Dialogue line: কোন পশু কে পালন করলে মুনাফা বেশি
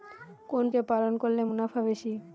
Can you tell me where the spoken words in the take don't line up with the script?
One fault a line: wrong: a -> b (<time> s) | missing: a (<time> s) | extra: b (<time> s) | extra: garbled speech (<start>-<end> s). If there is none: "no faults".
missing: পশু (0.7 s)